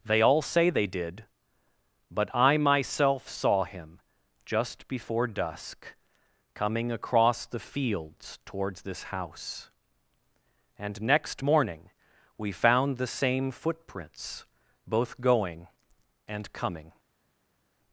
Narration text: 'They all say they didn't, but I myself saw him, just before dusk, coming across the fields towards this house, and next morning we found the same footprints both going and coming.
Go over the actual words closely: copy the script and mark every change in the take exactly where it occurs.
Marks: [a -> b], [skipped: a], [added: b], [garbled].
'They all say they [didn't, -> did] but I myself saw him, just before dusk, coming across the fields towards this house, and next morning we found the same footprints both going and coming.